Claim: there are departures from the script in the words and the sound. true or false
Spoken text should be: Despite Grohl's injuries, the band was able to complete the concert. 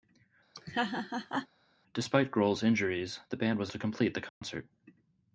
true